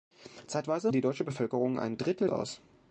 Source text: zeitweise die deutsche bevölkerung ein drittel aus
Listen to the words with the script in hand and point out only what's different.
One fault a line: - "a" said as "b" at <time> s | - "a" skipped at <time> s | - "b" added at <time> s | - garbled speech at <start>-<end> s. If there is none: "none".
none